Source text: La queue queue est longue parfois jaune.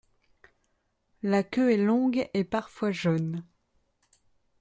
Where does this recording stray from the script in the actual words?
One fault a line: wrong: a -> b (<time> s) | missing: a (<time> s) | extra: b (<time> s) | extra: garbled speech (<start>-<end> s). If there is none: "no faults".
missing: queue (1.7 s)
extra: et (2.3 s)